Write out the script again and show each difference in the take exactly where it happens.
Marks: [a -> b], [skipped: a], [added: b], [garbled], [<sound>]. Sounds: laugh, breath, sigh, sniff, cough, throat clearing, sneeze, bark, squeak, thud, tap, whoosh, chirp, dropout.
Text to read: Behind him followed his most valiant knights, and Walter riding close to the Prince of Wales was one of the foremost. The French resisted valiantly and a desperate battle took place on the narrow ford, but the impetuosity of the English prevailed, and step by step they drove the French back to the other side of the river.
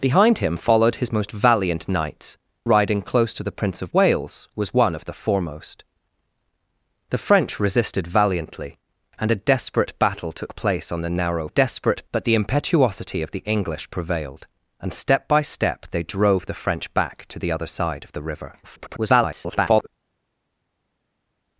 Behind him followed his most valiant knights, [skipped: and Walter] riding close to the Prince of Wales was one of the foremost. The French resisted valiantly and a desperate battle took place on the narrow [ford, -> desperate] but the impetuosity of the English prevailed, and step by step they drove the French back to the other side of the river. [garbled]